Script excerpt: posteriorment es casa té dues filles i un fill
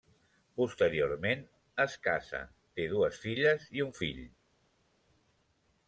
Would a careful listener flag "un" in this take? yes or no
no